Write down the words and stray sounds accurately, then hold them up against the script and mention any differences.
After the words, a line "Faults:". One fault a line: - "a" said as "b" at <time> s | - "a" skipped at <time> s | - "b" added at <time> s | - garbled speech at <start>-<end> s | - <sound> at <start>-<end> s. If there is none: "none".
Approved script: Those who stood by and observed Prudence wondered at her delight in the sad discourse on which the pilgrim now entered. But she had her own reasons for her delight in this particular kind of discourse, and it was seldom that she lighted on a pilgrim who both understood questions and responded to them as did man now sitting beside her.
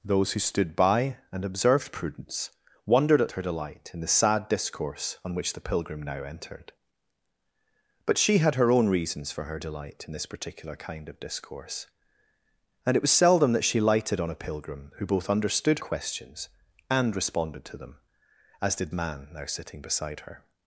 Those who stood by and observed Prudence wondered at her delight in the sad discourse on which the pilgrim now entered. But she had her own reasons for her delight in this particular kind of discourse, and it was seldom that she lighted on a pilgrim who both understood questions and responded to them as did man now sitting beside her.
Faults:
none